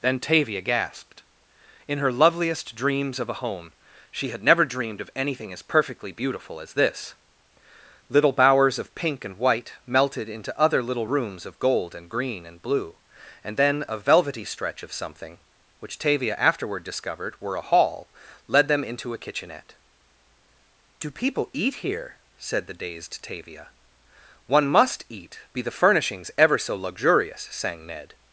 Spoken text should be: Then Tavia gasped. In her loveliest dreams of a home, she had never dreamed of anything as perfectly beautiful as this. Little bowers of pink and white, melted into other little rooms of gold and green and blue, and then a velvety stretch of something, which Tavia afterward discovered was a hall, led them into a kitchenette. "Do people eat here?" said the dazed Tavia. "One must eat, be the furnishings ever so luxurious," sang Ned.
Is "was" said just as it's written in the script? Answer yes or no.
no